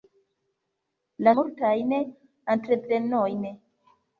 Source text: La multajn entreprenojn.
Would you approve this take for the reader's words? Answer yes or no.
yes